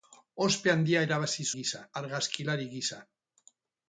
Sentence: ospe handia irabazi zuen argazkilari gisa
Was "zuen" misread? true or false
true